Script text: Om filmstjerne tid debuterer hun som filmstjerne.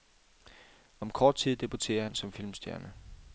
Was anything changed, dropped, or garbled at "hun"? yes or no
yes